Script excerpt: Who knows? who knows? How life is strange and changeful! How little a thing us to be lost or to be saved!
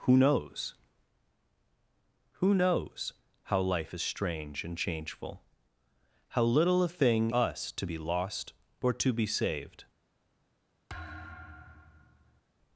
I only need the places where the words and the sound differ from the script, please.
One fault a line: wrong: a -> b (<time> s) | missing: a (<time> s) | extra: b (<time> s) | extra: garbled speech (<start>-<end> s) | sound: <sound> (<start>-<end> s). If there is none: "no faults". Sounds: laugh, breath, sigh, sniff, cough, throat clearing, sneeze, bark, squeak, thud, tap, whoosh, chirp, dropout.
sound: thud (10.9-12.4 s)